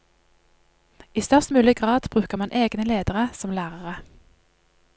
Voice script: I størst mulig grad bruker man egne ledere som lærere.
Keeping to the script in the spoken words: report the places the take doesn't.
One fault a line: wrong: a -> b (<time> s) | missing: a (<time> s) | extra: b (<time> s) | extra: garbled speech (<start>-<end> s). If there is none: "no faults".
no faults